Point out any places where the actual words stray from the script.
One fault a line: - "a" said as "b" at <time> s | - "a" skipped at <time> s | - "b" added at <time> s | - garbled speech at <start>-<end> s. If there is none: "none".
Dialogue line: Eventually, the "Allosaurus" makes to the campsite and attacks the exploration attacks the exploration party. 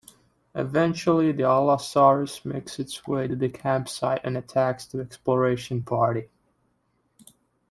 - "its way" added at 2.8 s
- "attacks the exploration" skipped at 5.8 s